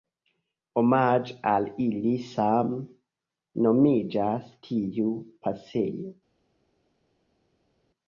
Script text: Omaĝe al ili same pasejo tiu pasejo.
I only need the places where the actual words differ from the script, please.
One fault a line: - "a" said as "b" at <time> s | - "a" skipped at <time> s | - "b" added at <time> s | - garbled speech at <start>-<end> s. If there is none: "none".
- "pasejo" said as "nomiĝas" at 3.7 s